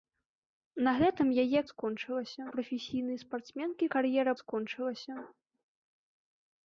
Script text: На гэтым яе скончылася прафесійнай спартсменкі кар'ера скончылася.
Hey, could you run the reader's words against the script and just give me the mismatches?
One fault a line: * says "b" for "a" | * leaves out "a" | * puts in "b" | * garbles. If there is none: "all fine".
all fine